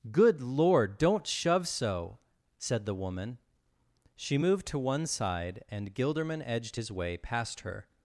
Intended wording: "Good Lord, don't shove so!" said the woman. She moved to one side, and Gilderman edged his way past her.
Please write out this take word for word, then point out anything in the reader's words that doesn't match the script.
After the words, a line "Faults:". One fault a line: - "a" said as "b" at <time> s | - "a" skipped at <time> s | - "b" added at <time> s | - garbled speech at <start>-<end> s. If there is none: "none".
"Good Lord, don't shove so!" said the woman. She moved to one side, and Gilderman edged his way past her.
Faults:
none